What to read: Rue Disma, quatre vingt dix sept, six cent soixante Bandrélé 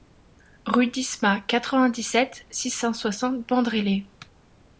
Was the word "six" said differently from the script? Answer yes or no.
no